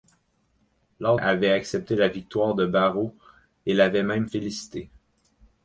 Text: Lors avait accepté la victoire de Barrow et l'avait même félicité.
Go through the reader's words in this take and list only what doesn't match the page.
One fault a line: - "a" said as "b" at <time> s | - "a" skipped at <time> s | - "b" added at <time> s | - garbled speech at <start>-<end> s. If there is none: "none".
none